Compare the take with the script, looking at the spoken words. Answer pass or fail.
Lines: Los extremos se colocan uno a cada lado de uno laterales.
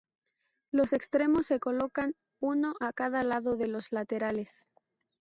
fail